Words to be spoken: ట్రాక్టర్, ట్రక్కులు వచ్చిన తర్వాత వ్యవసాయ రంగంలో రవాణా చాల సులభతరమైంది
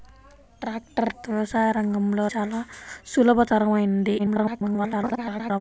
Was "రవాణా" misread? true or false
true